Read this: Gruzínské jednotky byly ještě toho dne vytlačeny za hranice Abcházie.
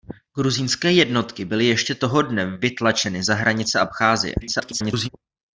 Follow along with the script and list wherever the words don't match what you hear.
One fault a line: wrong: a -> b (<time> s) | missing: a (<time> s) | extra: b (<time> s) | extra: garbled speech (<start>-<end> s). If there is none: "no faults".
extra: garbled speech (4.4-5.1 s)